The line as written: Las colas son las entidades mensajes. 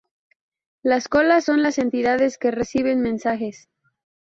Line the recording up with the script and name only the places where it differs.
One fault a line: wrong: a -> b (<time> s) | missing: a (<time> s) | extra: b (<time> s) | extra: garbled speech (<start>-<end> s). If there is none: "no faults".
extra: que reciben (2.4 s)